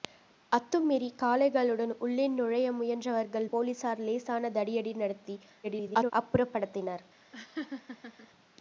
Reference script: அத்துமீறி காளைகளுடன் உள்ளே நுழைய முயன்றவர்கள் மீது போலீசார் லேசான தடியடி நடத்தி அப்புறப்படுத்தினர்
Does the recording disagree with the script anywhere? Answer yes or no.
yes